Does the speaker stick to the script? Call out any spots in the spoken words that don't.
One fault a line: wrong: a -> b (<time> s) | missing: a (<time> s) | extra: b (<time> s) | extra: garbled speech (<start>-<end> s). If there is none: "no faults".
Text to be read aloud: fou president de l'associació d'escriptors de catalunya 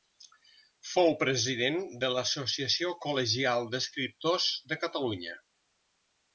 extra: col·legial (3.1 s)